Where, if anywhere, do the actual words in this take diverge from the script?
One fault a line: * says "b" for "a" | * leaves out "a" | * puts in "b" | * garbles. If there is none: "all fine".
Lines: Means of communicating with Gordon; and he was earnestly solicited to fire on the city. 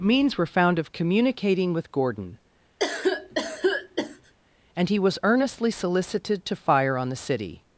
* puts in "were found"